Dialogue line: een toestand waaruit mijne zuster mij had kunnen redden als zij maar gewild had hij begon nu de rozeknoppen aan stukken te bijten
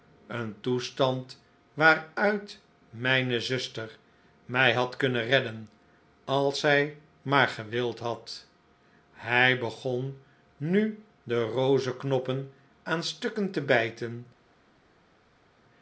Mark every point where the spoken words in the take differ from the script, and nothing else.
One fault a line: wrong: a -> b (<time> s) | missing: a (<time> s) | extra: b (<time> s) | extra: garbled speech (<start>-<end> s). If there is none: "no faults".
no faults